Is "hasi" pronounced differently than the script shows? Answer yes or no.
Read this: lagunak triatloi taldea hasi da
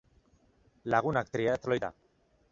yes